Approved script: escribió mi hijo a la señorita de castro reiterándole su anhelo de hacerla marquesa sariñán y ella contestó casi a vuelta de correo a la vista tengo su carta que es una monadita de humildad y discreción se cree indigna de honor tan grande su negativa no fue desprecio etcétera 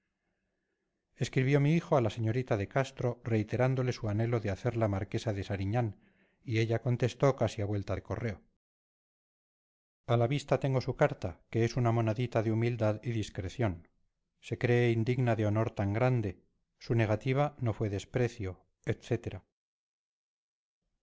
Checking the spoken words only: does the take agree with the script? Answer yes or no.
no